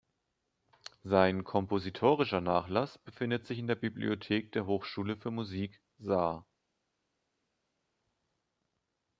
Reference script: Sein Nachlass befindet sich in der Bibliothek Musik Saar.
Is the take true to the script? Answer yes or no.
no